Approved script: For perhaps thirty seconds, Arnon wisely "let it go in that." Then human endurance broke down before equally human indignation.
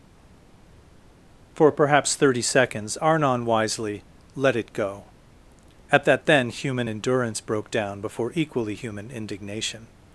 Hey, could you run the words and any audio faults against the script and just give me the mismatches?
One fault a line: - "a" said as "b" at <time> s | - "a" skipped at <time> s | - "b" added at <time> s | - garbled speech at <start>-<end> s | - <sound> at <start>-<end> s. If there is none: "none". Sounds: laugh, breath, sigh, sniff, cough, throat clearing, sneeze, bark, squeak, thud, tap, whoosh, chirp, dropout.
- "in" said as "at" at 5.9 s